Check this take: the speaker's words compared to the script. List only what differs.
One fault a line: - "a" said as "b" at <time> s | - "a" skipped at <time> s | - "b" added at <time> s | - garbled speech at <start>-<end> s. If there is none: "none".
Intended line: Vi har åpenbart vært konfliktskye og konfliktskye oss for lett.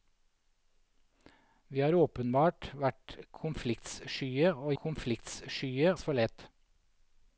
none